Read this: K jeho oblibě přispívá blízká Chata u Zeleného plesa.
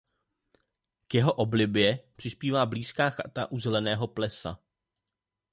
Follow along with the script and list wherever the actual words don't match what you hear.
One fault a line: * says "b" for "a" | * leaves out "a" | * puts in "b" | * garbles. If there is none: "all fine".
all fine